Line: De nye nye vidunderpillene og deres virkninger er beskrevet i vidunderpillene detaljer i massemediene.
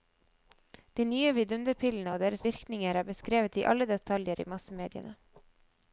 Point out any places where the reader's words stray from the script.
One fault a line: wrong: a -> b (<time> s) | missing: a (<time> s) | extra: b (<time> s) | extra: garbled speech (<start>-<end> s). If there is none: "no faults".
missing: nye (1.3 s)
wrong: vidunderpillene -> alle (3.7 s)